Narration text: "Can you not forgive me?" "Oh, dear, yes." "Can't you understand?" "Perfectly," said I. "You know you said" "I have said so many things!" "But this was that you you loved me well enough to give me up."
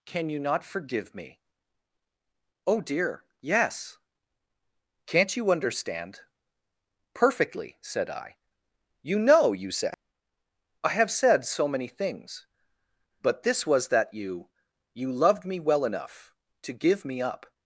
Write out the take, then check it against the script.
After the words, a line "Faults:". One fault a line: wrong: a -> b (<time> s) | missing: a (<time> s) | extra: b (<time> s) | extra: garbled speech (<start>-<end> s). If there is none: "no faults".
"Can you not forgive me?" "Oh, dear, yes." "Can't you understand?" "Perfectly," said I. "You know you said" "I have said so many things!" "But this was that you you loved me well enough to give me up."
Faults:
no faults